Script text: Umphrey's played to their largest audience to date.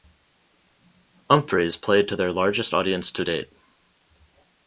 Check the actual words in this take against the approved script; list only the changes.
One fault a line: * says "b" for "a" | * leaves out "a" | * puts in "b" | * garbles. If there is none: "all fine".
all fine